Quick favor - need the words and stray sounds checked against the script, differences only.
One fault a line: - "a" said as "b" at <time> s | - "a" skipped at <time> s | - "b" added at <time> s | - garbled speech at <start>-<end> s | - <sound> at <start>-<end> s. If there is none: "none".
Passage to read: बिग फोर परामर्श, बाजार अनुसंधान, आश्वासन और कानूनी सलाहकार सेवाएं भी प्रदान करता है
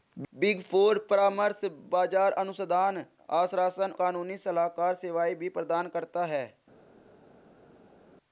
- "और" skipped at 3.9 s